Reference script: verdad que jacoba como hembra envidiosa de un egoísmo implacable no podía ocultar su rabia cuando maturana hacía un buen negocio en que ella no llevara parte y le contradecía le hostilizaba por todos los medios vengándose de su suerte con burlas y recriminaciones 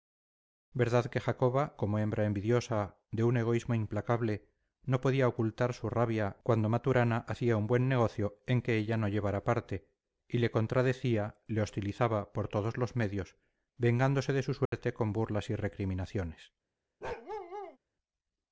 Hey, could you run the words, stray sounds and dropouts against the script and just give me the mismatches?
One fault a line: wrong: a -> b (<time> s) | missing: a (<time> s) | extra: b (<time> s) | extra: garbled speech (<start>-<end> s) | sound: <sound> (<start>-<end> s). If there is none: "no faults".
sound: dropout (14.7-14.7 s)
sound: bark (17.0-17.8 s)